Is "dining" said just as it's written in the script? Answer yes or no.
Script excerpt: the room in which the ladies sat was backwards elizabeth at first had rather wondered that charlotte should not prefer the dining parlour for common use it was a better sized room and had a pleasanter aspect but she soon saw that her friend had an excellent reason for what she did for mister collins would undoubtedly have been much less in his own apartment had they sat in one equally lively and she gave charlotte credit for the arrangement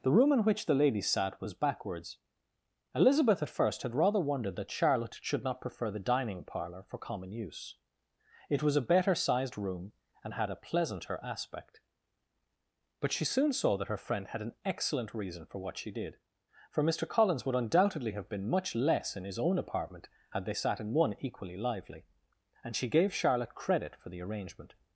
yes